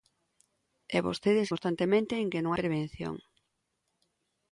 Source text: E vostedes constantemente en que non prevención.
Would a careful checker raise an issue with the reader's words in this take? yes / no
no